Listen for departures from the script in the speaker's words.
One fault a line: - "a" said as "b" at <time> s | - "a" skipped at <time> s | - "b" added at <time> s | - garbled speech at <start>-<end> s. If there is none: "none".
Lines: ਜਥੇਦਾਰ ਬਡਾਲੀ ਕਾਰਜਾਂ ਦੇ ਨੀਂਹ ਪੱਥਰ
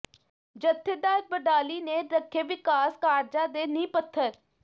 - "ਨੇ ਰੱਖੇ ਵਿਕਾਸ" added at 1.8 s